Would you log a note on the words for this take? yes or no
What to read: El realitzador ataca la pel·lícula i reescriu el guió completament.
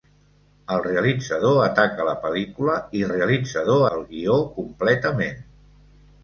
yes